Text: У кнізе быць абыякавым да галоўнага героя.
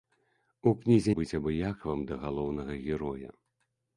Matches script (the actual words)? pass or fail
pass